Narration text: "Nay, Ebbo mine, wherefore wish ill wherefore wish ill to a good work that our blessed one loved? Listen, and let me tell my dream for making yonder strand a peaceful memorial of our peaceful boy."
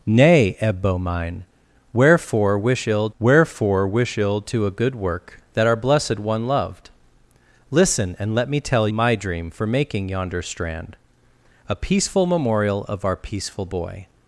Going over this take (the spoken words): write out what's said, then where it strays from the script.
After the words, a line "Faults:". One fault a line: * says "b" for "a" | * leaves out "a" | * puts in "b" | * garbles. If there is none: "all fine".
"Nay, Ebbo mine, wherefore wish ill wherefore wish ill to a good work that our blessed one loved? Listen, and let me tell my dream for making yonder strand a peaceful memorial of our peaceful boy."
Faults:
all fine